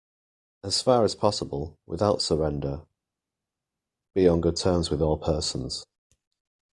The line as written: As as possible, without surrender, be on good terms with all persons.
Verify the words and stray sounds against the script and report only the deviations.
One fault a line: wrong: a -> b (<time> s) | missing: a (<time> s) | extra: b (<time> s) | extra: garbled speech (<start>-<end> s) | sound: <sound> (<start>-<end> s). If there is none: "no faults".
extra: far (0.8 s)